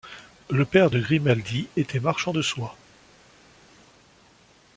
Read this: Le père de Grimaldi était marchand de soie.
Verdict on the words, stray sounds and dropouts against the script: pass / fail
pass